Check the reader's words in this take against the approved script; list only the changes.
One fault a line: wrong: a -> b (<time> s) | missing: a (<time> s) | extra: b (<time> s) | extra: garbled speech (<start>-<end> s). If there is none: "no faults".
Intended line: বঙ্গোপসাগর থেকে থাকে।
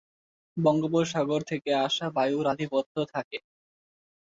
extra: আসা বায়ুর আধিপত্য (1.9 s)